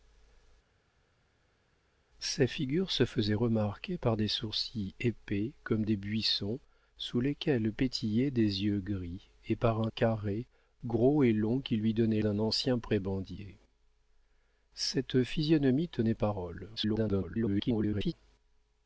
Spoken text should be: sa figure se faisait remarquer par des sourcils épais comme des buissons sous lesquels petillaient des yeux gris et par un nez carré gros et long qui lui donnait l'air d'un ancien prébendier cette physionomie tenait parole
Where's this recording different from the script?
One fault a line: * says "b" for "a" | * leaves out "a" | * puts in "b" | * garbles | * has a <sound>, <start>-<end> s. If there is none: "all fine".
* leaves out "nez"
* leaves out "l'air"
* garbles